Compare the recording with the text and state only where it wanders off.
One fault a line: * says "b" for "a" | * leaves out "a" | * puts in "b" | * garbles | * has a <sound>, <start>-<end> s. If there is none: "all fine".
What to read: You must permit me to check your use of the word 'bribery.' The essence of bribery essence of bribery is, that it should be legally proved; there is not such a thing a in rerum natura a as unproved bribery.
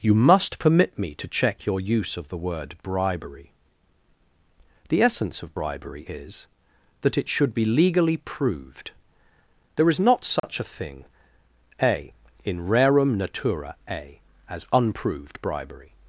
* leaves out "essence of bribery"
* has a dropout, 10.4-10.4 s